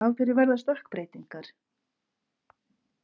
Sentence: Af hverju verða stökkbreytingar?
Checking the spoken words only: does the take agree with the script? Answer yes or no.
yes